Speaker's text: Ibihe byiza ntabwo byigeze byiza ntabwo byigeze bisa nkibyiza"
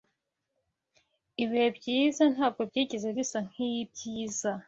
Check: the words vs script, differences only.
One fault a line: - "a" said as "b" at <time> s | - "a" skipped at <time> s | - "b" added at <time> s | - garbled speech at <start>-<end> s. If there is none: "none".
- "byiza ntabwo byigeze" skipped at 3.1 s